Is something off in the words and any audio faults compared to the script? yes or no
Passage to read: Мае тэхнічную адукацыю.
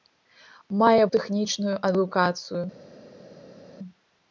no